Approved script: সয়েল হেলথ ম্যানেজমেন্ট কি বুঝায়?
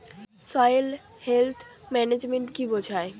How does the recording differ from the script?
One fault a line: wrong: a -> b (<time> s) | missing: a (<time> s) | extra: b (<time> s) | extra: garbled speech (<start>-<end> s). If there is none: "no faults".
no faults